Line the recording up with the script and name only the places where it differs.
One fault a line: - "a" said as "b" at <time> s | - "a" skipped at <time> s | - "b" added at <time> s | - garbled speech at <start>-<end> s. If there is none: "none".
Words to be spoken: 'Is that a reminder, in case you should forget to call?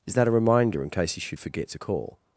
none